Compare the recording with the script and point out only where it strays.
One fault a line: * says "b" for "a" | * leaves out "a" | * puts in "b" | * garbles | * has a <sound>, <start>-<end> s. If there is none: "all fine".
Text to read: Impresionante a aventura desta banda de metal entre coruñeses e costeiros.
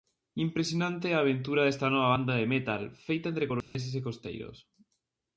* puts in "nova"
* puts in "feita"
* has a dropout, 3.6-3.7 s